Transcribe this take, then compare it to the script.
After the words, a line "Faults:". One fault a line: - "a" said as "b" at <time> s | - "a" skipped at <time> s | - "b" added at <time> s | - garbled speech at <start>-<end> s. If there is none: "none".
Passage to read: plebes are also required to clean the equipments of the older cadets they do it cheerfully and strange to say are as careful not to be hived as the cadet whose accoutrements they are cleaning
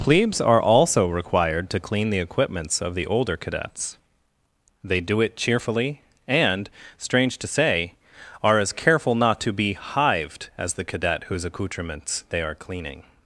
plebes are also required to clean the equipments of the older cadets they do it cheerfully and strange to say are as careful not to be hived as the cadet whose accoutrements they are cleaning
Faults:
none